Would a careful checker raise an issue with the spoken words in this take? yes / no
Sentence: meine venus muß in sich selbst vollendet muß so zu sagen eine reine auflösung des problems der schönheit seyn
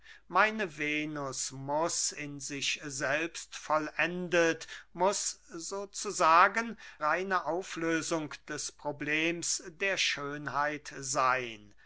yes